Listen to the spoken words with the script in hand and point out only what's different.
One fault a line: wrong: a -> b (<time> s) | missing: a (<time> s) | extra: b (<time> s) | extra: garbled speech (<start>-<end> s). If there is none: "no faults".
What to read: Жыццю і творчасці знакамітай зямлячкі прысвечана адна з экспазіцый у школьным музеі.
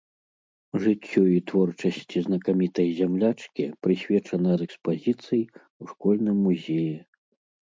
missing: адна (4.5 s)